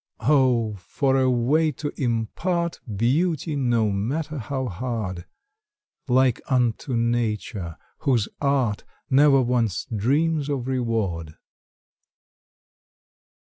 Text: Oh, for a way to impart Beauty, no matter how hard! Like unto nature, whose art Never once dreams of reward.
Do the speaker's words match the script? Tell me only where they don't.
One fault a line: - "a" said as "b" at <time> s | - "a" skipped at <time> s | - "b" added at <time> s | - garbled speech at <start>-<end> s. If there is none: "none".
none